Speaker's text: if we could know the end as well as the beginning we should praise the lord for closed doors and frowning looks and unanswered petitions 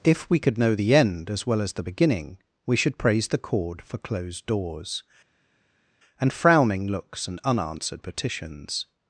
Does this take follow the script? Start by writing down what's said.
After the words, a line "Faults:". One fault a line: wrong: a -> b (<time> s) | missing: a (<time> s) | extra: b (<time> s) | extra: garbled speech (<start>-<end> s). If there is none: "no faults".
if we could know the end as well as the beginning we should praise the cord for closed doors and frowning looks and unanswered petitions
Faults:
wrong: lord -> cord (3.4 s)